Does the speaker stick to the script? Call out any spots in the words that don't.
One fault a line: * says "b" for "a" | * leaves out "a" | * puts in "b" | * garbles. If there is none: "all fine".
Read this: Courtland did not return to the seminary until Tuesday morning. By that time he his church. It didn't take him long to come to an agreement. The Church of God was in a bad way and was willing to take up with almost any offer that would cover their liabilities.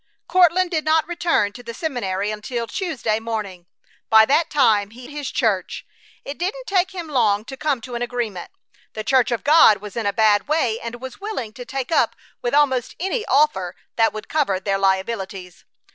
all fine